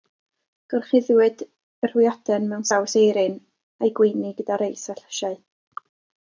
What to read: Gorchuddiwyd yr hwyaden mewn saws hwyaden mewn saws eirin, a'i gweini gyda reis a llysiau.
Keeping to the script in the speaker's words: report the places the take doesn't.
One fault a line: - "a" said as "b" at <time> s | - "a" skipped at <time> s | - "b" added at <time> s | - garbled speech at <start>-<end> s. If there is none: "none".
- "hwyaden mewn saws" skipped at 3.0 s